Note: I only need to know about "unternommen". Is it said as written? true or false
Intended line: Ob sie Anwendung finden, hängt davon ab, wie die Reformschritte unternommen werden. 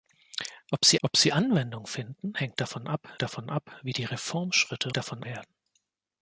false